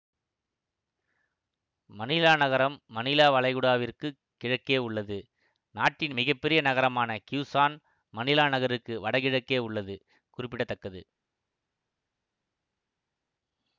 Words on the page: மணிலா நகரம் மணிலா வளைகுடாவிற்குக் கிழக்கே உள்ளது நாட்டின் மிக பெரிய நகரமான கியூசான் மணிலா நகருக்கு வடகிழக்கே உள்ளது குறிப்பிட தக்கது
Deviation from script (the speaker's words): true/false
false